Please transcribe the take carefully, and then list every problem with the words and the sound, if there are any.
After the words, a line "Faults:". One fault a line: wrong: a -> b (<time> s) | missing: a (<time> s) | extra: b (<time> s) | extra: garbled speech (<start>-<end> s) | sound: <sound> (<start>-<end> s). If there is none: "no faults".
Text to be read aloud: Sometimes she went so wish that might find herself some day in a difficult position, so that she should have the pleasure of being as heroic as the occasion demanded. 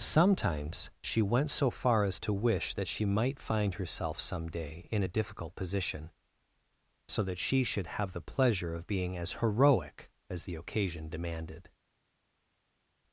Sometimes she went so far as to wish that she might find herself some day in a difficult position, so that she should have the pleasure of being as heroic as the occasion demanded.
Faults:
extra: far as to (1.7 s)
extra: she (2.9 s)